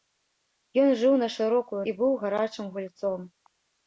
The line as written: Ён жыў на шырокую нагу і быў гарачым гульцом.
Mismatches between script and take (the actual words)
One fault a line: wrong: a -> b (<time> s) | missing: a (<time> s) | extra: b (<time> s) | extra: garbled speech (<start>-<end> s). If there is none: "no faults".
missing: нагу (1.8 s)